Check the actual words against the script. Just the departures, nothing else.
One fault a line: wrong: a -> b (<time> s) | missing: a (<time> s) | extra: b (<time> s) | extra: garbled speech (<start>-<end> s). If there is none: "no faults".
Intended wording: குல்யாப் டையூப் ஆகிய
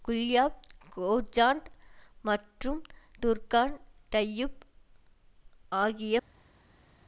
extra: கோஜாண்ட் மற்றும் டுர்கான் (0.9 s)